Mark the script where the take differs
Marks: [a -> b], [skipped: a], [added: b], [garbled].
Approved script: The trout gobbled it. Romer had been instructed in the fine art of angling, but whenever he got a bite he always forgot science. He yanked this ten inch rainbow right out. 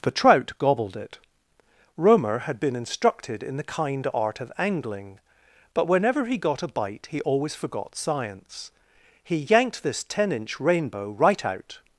The trout gobbled it. Romer had been instructed in the [fine -> kind] art of angling, but whenever he got a bite he always forgot science. He yanked this ten inch rainbow right out.